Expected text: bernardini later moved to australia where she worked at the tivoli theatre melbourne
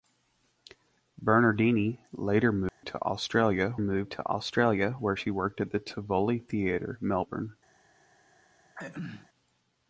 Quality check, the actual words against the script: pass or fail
fail